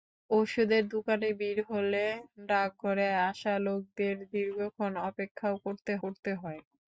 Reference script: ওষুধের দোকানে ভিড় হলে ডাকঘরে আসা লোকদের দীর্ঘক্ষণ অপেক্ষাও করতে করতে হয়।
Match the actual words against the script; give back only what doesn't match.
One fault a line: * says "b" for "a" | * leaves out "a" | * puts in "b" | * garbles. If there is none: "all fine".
all fine